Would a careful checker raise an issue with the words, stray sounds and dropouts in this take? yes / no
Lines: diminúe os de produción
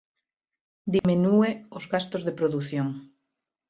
yes